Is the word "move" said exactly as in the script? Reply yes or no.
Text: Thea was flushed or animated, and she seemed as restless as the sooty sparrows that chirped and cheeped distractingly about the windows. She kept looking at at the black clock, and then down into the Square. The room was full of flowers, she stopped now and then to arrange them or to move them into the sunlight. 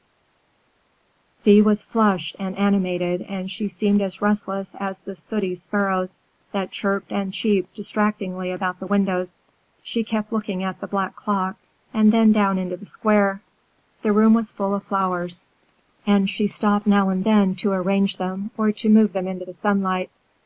yes